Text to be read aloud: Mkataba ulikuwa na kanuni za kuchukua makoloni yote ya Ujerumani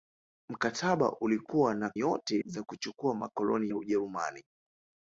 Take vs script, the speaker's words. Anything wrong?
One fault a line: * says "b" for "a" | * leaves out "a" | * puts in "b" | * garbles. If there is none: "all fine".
* says "yote" for "kanuni"
* leaves out "yote"